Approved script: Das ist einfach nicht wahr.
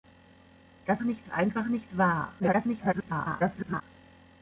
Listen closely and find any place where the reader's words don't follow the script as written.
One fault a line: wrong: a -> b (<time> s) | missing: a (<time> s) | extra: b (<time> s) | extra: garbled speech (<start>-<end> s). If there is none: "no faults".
wrong: ist -> nicht (1.0 s)
extra: garbled speech (2.4-3.8 s)